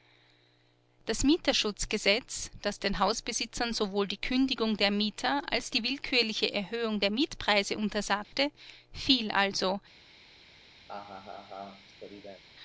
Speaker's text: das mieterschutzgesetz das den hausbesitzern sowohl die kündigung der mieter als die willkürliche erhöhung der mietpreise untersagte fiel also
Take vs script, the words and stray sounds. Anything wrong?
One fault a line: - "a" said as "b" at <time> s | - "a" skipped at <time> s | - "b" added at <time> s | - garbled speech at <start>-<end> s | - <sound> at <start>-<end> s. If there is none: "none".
- dropout at 8.2-8.3 s
- laugh at 10.9-12.4 s